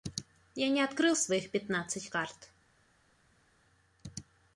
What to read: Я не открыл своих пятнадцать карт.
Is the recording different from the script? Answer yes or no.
no